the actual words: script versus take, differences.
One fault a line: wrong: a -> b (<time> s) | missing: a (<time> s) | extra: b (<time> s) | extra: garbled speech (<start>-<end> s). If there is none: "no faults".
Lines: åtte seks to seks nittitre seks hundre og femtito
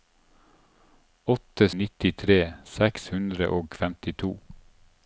missing: seks to seks (1.7 s)